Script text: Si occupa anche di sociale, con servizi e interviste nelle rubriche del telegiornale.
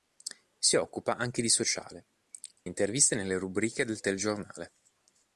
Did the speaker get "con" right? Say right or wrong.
wrong